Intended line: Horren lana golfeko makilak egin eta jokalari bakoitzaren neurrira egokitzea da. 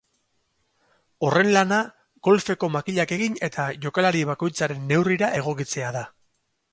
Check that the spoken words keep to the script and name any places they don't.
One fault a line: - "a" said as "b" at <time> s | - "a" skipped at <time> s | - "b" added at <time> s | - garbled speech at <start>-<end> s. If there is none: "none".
none